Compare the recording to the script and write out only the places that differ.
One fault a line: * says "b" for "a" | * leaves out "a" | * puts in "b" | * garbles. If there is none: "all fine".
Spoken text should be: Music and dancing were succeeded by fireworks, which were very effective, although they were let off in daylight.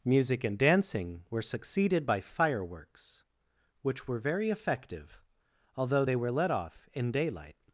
all fine